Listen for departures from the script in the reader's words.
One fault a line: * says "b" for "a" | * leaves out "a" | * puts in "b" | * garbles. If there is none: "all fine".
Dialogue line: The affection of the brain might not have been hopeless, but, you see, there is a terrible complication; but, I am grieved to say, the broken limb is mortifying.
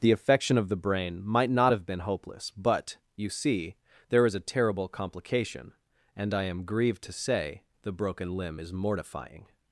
* says "and" for "but"